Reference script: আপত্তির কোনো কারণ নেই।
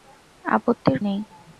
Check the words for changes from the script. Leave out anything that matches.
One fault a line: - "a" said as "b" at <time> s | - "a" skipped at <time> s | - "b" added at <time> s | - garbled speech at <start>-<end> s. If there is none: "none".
- "কোনো কারণ" skipped at 1.0 s